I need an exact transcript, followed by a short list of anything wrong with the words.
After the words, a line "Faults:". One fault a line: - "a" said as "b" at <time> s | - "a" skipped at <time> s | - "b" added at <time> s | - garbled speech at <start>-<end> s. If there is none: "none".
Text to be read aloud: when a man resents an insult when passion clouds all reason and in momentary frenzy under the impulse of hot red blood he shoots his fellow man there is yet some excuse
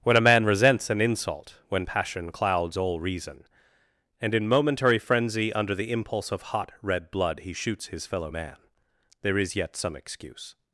when a man resents an insult when passion clouds all reason and in momentary frenzy under the impulse of hot red blood he shoots his fellow man there is yet some excuse
Faults:
none